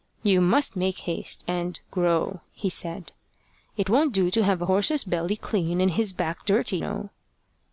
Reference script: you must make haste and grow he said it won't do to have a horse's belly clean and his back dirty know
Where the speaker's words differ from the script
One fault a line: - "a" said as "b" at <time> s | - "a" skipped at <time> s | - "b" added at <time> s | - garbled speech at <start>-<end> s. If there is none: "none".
none